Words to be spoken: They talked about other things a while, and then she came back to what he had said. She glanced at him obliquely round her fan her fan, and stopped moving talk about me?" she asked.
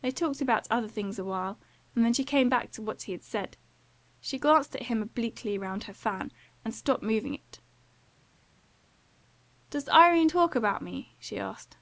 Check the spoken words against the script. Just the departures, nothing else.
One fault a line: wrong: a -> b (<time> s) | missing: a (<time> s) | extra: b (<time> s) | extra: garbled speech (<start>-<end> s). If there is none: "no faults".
missing: her fan (6.3 s)
extra: it Does Irene (7.3 s)